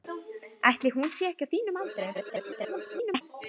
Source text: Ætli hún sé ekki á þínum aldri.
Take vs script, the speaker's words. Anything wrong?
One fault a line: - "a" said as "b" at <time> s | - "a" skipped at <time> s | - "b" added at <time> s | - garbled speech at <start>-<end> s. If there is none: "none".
- garbled speech at 2.1-3.2 s